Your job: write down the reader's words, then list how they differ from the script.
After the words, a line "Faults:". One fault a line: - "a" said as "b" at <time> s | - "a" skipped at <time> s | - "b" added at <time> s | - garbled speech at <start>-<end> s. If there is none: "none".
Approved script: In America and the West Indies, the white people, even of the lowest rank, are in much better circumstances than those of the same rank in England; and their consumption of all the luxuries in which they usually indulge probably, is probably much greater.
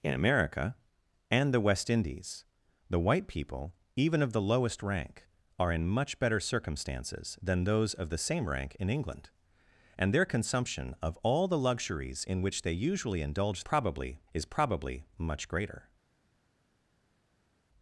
In America and the West Indies, the white people, even of the lowest rank, are in much better circumstances than those of the same rank in England; and their consumption of all the luxuries in which they usually indulge probably, is probably much greater.
Faults:
none